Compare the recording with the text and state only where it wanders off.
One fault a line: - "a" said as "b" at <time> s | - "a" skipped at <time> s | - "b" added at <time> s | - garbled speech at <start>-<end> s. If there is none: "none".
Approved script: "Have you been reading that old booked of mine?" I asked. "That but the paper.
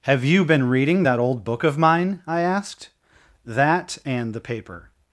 - "booked" said as "book" at 1.4 s
- "but" said as "and" at 4.0 s